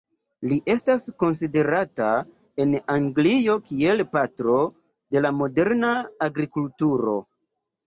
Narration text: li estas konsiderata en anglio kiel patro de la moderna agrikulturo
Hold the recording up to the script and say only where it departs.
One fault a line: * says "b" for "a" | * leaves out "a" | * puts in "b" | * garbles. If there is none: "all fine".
all fine